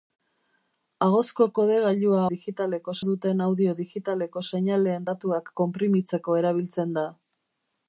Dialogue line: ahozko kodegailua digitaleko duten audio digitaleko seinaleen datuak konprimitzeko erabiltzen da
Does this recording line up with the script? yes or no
yes